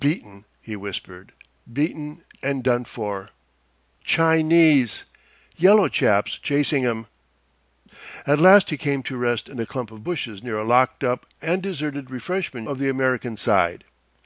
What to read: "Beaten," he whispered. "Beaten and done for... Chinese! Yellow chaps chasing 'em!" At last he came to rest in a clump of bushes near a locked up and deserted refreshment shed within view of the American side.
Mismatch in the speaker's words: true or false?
true